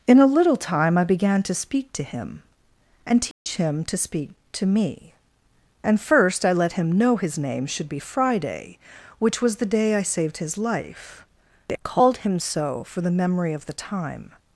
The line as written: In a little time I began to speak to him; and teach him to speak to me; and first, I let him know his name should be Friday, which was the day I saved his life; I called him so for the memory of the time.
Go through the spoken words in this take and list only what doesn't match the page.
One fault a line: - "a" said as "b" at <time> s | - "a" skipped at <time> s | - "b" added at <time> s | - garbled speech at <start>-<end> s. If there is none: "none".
none